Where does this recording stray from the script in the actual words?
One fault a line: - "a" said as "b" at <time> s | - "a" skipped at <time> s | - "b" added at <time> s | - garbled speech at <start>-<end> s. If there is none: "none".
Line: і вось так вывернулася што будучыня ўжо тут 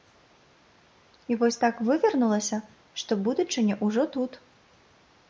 none